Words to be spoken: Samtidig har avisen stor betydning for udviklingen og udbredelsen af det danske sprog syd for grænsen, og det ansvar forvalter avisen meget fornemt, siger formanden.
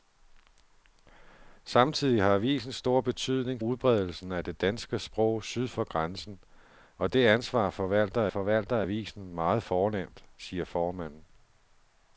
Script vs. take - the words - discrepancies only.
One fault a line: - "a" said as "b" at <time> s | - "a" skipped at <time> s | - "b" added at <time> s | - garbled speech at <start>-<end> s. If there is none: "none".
- "for udviklingen og" skipped at 3.6 s
- "forvalter" added at 8.3 s